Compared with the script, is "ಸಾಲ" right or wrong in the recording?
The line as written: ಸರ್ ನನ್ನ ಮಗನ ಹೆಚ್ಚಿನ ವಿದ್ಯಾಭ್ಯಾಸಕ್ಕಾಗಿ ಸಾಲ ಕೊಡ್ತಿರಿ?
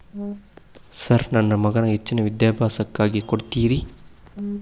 wrong